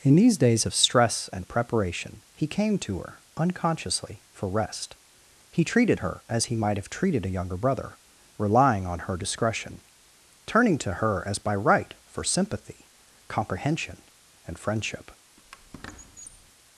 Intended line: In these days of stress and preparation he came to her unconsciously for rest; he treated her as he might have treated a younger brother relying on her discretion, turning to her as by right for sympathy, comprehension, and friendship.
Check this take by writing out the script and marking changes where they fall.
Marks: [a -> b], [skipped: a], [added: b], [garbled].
In these days of stress and preparation he came to her unconsciously for rest; he treated her as he might have treated a younger brother relying on her discretion, turning to her as by right for sympathy, comprehension, and friendship.